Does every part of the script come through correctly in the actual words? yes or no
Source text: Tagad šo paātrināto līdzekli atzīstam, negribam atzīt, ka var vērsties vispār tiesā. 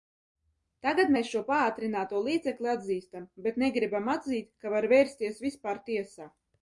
no